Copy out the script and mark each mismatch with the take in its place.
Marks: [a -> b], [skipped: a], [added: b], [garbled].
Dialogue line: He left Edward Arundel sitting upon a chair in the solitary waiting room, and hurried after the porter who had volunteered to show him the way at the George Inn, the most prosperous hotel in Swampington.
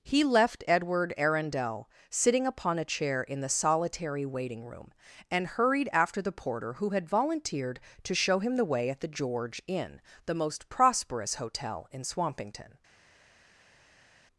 He left Edward Arundel sitting upon a chair in the solitary waiting room, and hurried after the porter who had volunteered to show him the way at the George Inn, the most prosperous hotel in Swampington.